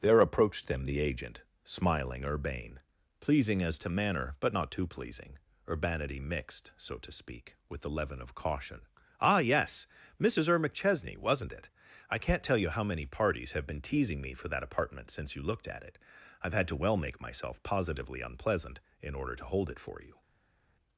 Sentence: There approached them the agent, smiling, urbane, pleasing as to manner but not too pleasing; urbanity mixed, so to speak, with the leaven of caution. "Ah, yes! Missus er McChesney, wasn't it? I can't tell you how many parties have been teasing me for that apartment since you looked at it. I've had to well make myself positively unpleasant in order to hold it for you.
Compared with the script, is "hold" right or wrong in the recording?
right